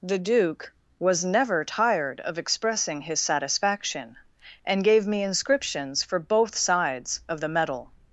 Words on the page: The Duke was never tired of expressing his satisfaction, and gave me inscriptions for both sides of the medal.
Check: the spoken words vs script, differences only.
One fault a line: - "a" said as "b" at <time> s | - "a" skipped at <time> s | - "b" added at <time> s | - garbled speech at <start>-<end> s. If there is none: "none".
none